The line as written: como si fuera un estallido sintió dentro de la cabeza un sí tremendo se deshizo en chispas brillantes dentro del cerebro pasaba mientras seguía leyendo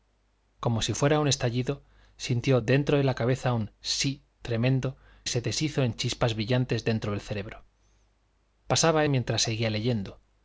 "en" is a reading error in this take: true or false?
false